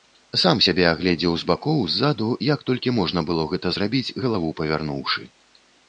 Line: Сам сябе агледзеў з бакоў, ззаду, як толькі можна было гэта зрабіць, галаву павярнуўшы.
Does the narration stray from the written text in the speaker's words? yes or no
no